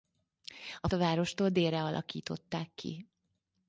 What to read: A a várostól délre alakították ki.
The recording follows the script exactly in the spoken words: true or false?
true